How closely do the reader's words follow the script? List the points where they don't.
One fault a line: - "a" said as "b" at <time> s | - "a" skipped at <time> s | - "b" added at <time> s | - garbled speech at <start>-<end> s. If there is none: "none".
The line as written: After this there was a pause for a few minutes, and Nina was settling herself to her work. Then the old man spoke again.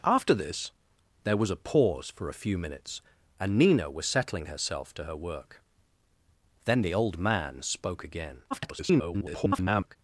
- garbled speech at 8.5-10.0 s